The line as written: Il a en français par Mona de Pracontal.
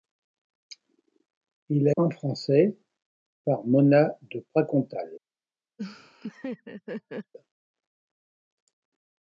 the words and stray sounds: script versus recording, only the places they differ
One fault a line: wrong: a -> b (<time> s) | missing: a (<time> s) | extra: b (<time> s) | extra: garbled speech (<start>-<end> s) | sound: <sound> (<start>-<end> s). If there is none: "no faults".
sound: laugh (5.8-7.3 s)